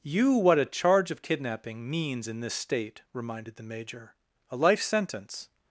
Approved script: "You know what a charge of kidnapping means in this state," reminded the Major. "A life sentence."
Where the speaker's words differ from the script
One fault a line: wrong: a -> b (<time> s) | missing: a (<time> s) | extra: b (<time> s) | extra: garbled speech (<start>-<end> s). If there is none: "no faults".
missing: know (0.3 s)